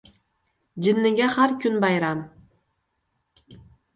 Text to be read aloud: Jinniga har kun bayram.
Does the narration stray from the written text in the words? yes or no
no